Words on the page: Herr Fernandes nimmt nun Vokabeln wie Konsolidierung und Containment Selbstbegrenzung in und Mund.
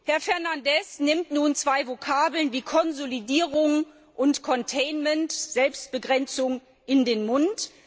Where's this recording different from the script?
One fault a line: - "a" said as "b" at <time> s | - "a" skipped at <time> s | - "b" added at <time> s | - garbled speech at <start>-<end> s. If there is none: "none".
- "zwei" added at 1.6 s
- "und" said as "den" at 7.0 s